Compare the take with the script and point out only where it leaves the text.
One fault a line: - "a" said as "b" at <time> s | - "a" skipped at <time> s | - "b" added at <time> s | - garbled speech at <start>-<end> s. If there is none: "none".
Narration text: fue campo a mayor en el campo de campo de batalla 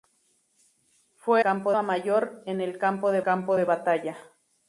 none